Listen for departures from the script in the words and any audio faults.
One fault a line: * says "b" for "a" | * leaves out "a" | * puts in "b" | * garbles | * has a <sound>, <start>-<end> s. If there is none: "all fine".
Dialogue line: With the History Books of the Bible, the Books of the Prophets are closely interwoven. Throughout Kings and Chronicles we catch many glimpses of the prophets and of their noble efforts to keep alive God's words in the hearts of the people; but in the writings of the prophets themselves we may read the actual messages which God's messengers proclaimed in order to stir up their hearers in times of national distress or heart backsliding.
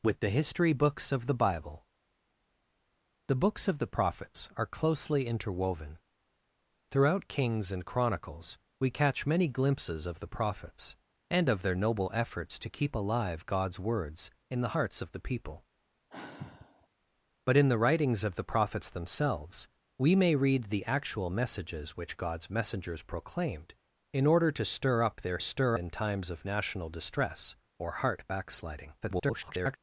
* has a sigh, 16.1-16.9 s
* says "stir" for "hearers"
* garbles